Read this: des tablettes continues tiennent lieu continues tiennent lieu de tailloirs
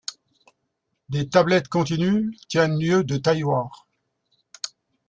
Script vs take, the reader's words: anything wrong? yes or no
yes